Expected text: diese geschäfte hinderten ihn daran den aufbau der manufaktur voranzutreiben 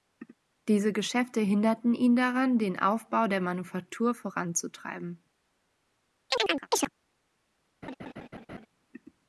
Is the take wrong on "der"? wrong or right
right